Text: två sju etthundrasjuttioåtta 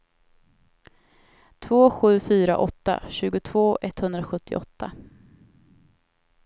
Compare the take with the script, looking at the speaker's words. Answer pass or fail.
fail